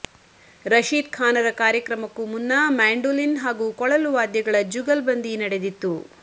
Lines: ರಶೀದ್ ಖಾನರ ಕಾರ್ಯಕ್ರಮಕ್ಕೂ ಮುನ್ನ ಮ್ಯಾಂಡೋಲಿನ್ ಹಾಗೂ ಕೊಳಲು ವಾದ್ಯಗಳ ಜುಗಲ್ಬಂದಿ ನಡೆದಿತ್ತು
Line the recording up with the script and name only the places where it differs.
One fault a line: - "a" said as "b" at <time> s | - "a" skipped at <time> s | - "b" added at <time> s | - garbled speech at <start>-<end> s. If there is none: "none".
none